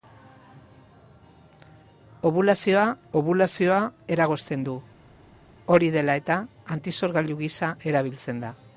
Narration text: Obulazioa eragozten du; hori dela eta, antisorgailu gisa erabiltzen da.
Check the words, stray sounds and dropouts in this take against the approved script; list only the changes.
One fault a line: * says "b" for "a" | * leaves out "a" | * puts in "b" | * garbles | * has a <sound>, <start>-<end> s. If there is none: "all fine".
* puts in "obulazioa"